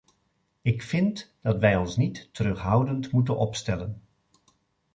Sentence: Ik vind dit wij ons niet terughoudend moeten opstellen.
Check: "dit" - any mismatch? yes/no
yes